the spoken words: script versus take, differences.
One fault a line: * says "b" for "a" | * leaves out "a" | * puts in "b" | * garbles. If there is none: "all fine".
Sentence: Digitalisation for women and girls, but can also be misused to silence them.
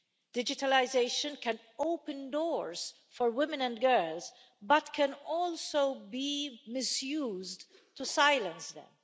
* puts in "can open doors"